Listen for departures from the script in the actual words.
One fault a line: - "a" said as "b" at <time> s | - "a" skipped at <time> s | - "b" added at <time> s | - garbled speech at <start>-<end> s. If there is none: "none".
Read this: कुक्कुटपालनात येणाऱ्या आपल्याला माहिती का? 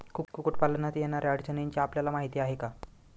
- "अडचणींची" added at 1.3 s
- "आहे" added at 2.4 s